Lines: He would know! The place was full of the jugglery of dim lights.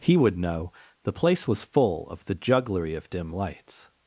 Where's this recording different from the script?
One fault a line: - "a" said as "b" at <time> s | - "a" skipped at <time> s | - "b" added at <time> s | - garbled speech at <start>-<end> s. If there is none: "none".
none